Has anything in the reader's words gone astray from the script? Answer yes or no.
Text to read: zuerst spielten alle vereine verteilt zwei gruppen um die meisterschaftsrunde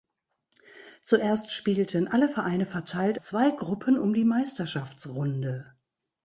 no